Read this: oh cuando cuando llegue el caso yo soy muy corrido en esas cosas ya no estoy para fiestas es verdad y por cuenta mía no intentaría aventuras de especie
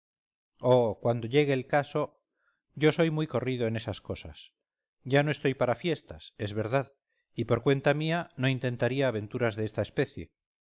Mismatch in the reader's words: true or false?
true